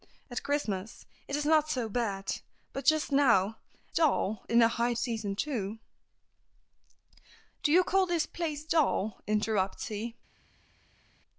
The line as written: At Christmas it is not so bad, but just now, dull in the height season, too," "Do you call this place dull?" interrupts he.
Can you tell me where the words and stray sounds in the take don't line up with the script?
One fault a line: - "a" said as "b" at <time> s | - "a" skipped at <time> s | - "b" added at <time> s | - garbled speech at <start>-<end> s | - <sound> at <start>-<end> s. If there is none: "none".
none